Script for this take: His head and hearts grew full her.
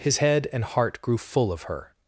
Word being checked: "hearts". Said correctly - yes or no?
no